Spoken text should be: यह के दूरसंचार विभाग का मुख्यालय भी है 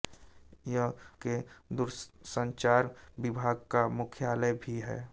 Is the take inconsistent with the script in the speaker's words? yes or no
no